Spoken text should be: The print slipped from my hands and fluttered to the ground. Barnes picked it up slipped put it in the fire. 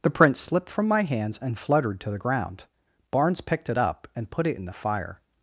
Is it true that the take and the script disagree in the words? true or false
true